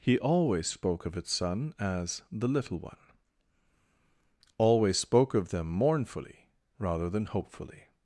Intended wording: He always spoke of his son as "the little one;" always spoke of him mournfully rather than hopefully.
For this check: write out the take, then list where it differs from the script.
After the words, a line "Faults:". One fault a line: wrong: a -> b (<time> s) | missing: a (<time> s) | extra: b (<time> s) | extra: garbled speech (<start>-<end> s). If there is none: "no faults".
He always spoke of its son as "the little one;" always spoke of them mournfully rather than hopefully.
Faults:
wrong: his -> its (1.1 s)
wrong: him -> them (5.5 s)